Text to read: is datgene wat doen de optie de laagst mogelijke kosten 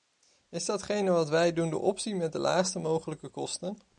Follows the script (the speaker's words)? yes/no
no